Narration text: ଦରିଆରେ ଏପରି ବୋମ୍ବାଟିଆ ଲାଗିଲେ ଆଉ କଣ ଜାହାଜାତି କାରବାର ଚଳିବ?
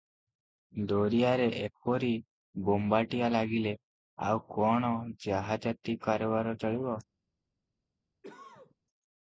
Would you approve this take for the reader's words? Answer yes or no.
yes